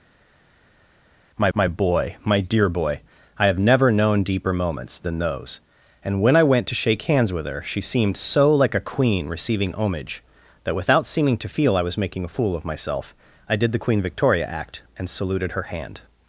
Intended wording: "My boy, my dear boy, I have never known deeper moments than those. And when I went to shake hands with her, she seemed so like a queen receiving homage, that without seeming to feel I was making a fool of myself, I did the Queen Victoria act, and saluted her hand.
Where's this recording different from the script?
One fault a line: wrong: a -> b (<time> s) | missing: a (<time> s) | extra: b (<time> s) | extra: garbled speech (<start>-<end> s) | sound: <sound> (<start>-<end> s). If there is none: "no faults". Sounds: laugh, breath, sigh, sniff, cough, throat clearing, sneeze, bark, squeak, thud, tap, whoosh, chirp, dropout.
extra: my (1.5 s)